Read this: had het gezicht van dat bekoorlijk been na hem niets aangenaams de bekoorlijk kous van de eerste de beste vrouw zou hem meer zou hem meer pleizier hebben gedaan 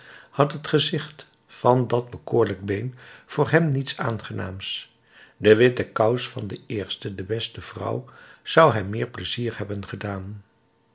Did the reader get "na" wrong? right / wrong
wrong